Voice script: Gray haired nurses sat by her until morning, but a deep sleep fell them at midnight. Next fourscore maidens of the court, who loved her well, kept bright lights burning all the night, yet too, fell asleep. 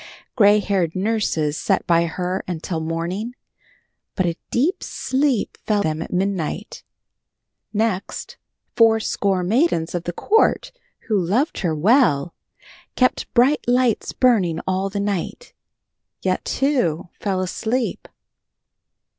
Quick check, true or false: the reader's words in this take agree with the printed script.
true